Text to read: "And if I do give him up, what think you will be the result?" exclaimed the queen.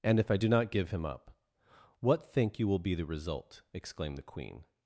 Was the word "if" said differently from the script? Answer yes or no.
no